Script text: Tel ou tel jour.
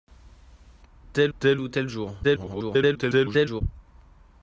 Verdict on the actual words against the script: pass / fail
fail